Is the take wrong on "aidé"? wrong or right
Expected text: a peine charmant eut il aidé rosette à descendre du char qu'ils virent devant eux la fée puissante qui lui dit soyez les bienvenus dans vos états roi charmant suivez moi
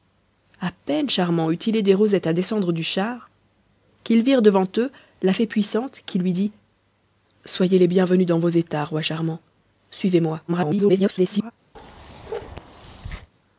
right